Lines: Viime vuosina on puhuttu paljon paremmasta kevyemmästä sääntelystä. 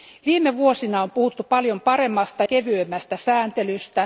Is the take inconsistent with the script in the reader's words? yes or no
no